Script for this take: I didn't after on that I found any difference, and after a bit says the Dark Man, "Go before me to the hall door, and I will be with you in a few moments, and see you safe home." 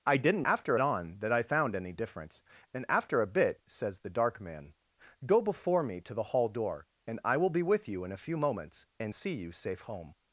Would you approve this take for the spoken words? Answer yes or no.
yes